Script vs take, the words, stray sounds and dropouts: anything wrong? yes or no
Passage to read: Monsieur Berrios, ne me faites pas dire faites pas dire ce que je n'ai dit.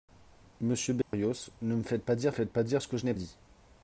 yes